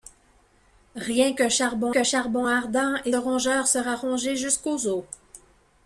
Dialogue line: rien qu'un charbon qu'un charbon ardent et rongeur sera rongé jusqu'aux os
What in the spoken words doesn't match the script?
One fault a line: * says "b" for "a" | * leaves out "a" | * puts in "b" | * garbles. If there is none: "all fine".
all fine